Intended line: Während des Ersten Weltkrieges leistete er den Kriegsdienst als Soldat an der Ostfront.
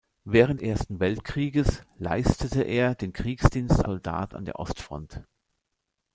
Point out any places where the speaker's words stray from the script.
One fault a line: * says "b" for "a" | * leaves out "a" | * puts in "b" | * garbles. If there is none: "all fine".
* leaves out "des"
* leaves out "als"